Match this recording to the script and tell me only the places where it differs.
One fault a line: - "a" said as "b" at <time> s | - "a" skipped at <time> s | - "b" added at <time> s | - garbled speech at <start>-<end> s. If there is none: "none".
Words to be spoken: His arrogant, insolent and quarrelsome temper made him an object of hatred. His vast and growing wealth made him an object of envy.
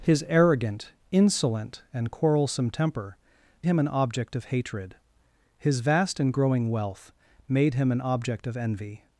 - "made" skipped at 3.2 s